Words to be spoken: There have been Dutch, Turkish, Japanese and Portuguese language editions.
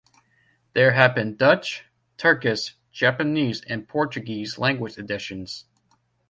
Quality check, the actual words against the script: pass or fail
pass